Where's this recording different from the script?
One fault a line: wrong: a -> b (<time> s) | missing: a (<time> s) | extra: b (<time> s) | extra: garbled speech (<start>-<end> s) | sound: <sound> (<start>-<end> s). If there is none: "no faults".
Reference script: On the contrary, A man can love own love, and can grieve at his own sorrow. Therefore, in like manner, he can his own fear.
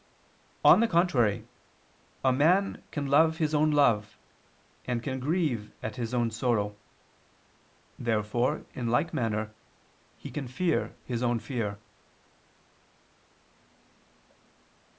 extra: his (3.4 s)
extra: fear (10.5 s)